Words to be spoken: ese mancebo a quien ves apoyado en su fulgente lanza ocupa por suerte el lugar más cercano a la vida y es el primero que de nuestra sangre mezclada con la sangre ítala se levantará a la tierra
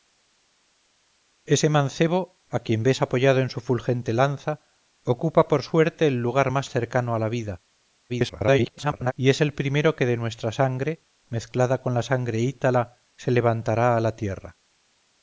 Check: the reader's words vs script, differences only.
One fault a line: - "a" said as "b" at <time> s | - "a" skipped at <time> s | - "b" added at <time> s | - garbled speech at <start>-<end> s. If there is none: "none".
- garbled speech at 8.1-9.1 s